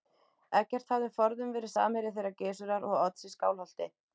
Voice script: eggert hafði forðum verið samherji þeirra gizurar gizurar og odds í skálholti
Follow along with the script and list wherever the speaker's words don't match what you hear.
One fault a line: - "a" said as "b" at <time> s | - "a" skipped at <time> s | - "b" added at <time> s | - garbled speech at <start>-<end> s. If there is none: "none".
- "gizurar" skipped at 2.9 s